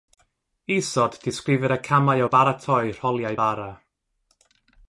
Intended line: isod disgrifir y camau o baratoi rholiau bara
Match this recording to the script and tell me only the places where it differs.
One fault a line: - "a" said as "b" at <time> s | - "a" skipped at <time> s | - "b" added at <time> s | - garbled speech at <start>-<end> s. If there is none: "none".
none